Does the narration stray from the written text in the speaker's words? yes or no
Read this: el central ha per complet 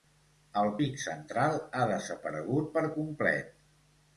yes